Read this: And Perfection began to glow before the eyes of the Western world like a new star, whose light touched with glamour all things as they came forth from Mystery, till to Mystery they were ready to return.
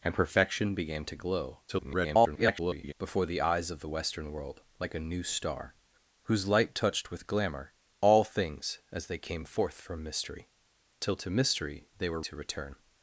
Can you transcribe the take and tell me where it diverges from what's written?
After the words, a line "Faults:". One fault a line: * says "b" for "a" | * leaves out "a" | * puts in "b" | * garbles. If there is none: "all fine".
And Perfection began to glow [garbled] before the eyes of the Western world like a new star, whose light touched with glamour all things as they came forth from Mystery, till to Mystery they were to return.
Faults:
* garbles
* leaves out "ready"